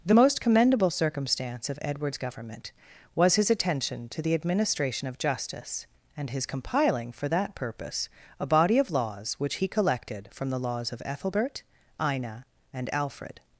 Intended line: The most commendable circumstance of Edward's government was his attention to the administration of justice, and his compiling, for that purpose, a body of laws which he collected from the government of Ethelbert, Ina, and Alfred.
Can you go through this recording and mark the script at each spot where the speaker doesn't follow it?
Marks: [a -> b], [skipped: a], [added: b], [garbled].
The most commendable circumstance of Edward's government was his attention to the administration of justice, and his compiling, for that purpose, a body of laws which he collected from the [government -> laws] of Ethelbert, Ina, and Alfred.